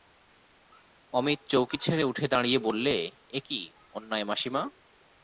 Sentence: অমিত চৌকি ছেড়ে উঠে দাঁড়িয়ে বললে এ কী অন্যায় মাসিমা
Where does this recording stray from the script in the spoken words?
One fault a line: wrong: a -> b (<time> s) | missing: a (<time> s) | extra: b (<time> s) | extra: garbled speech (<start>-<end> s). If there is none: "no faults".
no faults